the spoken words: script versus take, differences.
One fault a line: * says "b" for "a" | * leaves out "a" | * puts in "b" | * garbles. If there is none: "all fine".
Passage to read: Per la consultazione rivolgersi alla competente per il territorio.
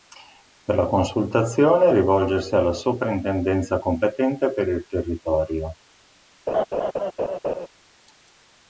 * puts in "soprintendenza"